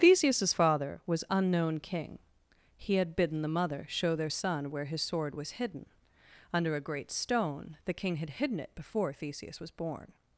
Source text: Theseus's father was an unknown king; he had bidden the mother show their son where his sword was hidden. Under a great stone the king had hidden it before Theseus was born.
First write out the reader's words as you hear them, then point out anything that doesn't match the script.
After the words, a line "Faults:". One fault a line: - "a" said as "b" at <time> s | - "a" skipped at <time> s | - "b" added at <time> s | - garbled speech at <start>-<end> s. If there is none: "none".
Theseus's father was unknown king; he had bidden the mother show their son where his sword was hidden. Under a great stone the king had hidden it before Theseus was born.
Faults:
- "an" skipped at 1.2 s